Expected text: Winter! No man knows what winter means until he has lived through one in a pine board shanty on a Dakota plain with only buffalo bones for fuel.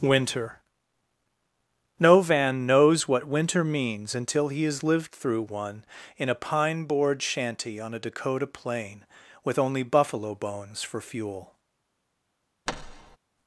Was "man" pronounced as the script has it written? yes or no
no